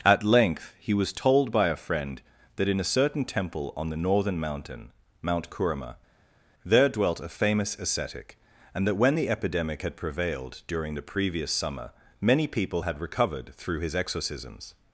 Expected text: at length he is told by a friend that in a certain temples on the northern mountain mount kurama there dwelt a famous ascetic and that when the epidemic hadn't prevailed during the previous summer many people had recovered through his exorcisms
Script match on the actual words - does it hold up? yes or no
no